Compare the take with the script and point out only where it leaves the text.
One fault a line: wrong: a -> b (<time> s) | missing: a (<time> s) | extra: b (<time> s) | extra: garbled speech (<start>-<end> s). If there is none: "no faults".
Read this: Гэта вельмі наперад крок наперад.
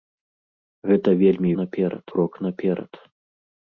no faults